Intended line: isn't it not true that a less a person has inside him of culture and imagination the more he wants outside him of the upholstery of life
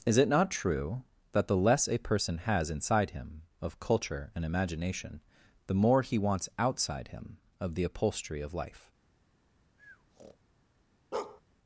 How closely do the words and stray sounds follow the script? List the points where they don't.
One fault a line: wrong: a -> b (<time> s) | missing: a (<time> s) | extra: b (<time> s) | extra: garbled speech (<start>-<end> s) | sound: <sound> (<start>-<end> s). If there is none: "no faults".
wrong: isn't -> is (0.0 s)
wrong: a -> the (1.5 s)
sound: breath (9.8-10.4 s)
sound: bark (11.1-11.4 s)